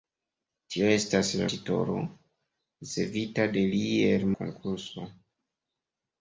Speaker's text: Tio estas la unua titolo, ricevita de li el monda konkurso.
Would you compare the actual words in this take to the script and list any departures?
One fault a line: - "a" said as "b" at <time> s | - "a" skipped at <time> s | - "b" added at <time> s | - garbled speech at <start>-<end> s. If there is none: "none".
- "unua" skipped at 1.5 s
- "monda" skipped at 4.3 s